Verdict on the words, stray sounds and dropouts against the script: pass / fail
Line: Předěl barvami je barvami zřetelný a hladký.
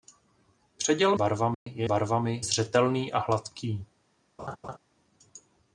fail